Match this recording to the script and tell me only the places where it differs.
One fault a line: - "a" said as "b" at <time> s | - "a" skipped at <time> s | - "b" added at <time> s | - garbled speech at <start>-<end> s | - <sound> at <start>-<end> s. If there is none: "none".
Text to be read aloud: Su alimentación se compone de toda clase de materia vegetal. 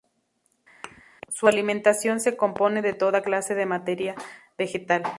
- thud at 0.8-1.0 s